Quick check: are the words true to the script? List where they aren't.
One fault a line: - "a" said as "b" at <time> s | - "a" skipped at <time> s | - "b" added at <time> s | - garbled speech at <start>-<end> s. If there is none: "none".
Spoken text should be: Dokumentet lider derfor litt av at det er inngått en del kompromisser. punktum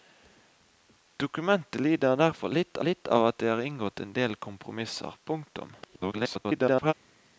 - "litt" added at 2.9 s
- garbled speech at 5.8-6.9 s